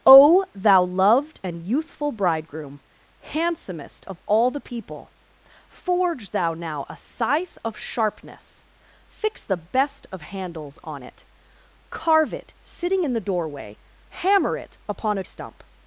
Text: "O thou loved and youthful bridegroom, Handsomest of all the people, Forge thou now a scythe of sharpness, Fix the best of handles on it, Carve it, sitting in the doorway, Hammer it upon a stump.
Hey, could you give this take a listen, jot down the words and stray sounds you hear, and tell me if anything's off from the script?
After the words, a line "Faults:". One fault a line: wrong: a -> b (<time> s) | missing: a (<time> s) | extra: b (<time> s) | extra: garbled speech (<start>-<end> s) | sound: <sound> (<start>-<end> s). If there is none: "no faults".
"O thou loved and youthful bridegroom, Handsomest of all the people, Forge thou now a scythe of sharpness, Fix the best of handles on it, Carve it, sitting in the doorway, Hammer it upon a stump.
Faults:
no faults